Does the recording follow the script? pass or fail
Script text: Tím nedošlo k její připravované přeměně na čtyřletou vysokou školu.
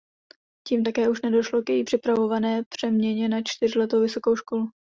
fail